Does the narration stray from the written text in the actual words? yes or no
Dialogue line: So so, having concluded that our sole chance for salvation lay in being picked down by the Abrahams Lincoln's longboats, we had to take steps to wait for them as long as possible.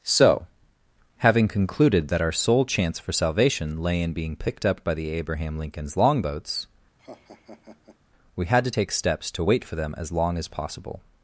yes